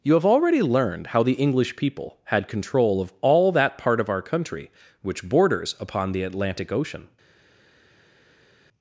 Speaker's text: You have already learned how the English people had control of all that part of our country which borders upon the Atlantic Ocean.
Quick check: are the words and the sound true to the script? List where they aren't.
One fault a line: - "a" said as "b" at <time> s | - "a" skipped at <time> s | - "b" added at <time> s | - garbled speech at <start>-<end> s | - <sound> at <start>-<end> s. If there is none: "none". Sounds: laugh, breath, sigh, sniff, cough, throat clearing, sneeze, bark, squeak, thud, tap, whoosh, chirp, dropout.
none